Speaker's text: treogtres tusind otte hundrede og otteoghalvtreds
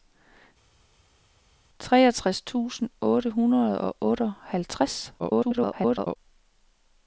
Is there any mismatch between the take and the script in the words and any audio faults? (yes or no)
yes